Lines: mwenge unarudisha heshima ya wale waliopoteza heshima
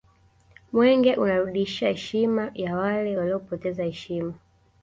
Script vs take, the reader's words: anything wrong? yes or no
no